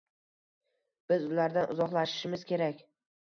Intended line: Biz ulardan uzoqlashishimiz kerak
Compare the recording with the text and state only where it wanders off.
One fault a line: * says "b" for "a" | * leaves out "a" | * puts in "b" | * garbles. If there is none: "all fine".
all fine